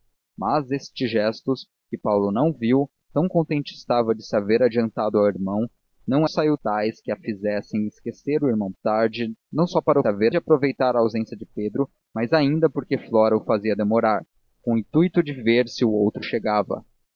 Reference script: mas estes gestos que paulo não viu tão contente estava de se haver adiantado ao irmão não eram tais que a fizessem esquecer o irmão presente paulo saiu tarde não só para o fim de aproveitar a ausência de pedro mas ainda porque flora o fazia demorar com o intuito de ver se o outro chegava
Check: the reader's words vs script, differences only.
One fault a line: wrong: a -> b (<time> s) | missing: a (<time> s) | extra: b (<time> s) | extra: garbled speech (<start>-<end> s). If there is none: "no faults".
wrong: eram -> saiu (6.2 s)
missing: presente paulo saiu (8.7 s)
wrong: fim -> haver (10.1 s)